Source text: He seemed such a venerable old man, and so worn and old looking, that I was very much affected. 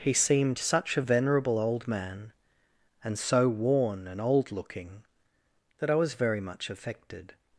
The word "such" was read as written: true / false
true